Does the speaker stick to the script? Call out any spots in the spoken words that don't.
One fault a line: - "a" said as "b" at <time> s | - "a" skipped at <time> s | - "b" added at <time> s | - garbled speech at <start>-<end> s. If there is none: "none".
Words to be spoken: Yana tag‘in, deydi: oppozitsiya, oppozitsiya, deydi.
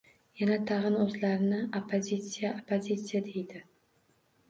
- "deydi" said as "o‘zlarini" at 1.0 s